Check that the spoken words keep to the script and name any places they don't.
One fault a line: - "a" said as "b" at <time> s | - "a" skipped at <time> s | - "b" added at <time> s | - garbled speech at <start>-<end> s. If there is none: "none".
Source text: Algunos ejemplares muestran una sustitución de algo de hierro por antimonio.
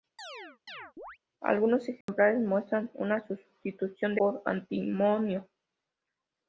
- "algo de hierro" skipped at 4.2 s